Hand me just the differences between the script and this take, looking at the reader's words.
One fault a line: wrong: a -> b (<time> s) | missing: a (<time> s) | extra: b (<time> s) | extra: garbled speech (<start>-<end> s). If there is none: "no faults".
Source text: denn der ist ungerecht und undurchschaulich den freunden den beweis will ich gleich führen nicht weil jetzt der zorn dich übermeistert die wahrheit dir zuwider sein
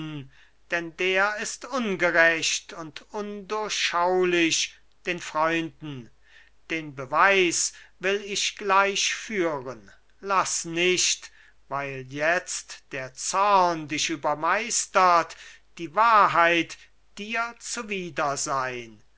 extra: laß (10.2 s)